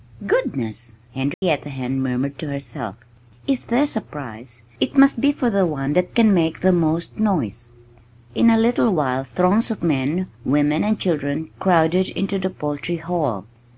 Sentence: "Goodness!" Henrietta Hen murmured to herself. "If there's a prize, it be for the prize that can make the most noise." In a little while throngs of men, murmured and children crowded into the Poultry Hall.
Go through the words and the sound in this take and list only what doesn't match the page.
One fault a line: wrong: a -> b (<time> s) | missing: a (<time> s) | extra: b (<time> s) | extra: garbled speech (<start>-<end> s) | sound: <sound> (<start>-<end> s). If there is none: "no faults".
sound: dropout (1.3-1.4 s)
extra: must (5.0 s)
wrong: prize -> one (5.7 s)
wrong: murmured -> women (10.4 s)